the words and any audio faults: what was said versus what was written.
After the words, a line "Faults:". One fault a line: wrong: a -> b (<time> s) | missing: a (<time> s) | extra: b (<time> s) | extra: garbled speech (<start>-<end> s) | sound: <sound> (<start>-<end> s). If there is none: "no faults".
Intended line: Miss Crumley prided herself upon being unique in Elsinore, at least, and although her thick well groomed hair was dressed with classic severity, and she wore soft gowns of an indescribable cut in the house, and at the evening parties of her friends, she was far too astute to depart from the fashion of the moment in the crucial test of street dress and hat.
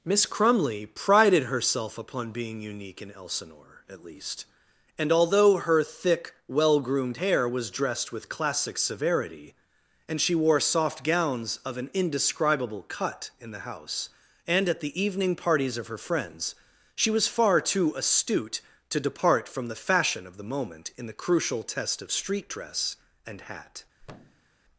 Miss Crumley prided herself upon being unique in Elsinore, at least, and although her thick well groomed hair was dressed with classic severity, and she wore soft gowns of an indescribable cut in the house, and at the evening parties of her friends, she was far too astute to depart from the fashion of the moment in the crucial test of street dress and hat.
Faults:
sound: thud (24.0-24.5 s)